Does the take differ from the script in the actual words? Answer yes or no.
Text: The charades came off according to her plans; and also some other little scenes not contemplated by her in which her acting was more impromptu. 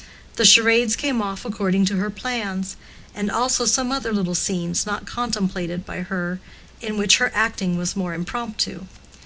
no